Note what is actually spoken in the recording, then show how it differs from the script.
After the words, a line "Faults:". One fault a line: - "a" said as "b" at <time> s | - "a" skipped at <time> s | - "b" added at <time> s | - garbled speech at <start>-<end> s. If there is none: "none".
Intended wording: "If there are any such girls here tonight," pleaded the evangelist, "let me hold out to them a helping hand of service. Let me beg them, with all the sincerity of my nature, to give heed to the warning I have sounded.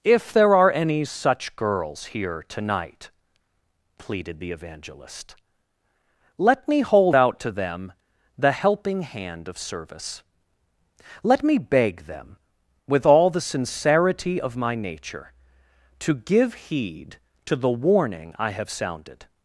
"If there are any such girls here tonight," pleaded the evangelist, "let me hold out to them the helping hand of service. Let me beg them, with all the sincerity of my nature, to give heed to the warning I have sounded.
Faults:
- "a" said as "the" at 8.4 s